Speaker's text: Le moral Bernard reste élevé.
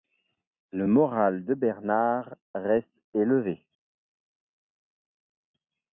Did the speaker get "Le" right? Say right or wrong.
right